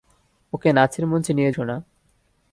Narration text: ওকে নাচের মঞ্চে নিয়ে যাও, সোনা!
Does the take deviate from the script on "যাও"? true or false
true